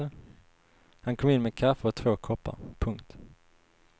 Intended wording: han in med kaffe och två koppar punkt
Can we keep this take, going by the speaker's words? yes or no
no